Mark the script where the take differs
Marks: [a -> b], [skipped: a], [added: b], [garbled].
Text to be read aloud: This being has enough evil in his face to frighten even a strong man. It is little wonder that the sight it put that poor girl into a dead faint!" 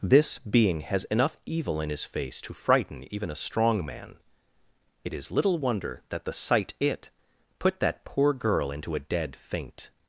This being has enough evil in his face to frighten even a strong man. It is little wonder that the sight it put that poor girl into a dead faint!"